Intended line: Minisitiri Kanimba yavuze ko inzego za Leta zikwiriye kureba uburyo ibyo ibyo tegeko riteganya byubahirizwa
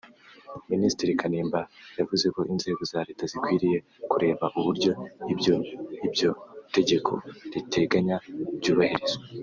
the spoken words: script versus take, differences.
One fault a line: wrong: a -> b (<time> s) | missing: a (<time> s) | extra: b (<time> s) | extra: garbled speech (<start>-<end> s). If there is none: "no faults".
no faults